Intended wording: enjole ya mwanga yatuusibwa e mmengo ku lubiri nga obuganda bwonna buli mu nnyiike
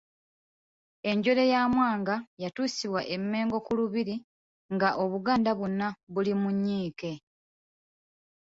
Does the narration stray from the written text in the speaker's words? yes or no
no